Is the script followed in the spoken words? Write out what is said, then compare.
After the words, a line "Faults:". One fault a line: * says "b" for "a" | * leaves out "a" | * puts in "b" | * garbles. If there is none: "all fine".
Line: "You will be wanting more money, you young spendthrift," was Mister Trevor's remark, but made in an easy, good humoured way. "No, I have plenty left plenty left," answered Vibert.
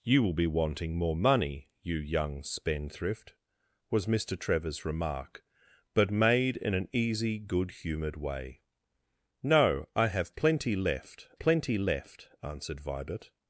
"You will be wanting more money, you young spendthrift," was Mister Trevor's remark, but made in an easy, good humoured way. "No, I have plenty left plenty left," answered Vibert.
Faults:
all fine